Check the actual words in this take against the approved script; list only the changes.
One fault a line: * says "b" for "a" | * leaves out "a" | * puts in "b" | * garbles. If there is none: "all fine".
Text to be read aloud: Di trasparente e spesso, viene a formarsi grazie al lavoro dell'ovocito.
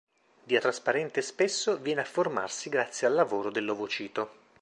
all fine